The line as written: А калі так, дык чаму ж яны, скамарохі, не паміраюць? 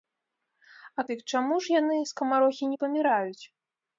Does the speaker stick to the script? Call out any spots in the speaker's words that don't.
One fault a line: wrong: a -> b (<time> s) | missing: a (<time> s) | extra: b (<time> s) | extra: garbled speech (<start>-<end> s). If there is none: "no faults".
missing: калі так (1.0 s)